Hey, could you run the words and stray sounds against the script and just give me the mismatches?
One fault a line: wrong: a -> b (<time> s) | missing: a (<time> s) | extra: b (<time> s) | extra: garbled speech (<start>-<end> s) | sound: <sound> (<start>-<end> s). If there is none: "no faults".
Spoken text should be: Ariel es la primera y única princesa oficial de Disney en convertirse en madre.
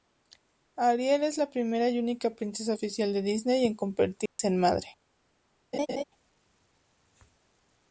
sound: dropout (4.3-4.4 s)
sound: laugh (5.7-6.0 s)